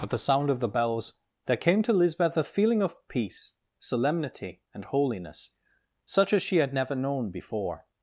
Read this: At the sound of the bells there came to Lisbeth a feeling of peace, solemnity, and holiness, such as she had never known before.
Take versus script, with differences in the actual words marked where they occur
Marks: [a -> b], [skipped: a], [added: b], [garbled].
At the sound of the bells there came to Lisbeth a feeling of peace, solemnity, and holiness, such as she had never known before.